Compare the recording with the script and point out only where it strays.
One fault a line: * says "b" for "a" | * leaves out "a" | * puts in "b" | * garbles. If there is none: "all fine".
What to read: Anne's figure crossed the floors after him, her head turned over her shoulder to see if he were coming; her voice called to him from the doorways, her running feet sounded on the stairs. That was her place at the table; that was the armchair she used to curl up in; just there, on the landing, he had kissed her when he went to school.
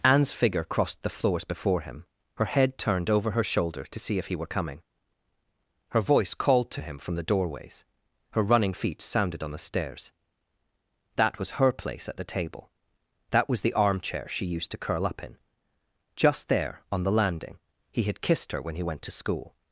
* says "before" for "after"